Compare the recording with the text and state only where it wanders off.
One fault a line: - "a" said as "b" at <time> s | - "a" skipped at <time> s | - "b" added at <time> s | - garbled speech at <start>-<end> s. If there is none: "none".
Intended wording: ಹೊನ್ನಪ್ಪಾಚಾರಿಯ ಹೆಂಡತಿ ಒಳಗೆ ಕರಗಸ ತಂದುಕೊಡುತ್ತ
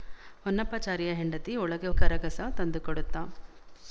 none